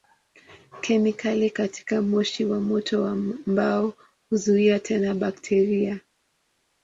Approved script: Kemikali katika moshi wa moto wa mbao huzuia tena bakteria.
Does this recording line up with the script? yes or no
yes